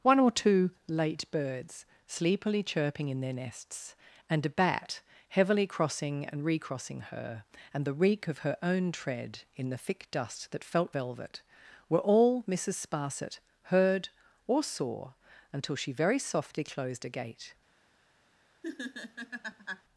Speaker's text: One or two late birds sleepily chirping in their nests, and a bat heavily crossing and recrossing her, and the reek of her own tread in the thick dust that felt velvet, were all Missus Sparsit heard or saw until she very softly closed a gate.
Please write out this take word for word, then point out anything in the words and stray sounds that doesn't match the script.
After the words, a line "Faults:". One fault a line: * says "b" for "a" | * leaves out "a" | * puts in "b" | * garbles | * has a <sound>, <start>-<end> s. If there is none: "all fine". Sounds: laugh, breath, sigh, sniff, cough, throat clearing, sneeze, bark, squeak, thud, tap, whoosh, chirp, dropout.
One or two late birds sleepily chirping in their nests, and a bat heavily crossing and recrossing her, and the reek of her own tread in the thick dust that felt velvet, were all Missus Sparsit heard or saw until she very softly closed a gate.
Faults:
* has a laugh, 18.6-19.8 s